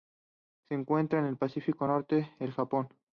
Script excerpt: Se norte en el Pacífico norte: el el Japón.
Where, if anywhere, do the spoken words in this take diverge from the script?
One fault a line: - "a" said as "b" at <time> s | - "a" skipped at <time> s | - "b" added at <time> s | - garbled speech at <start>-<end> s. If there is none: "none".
- "norte" said as "encuentra" at 0.7 s
- "el" skipped at 2.5 s